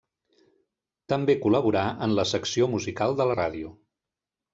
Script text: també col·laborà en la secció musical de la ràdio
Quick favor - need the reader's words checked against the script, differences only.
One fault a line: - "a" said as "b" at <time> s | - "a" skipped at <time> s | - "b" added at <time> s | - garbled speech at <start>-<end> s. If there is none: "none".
none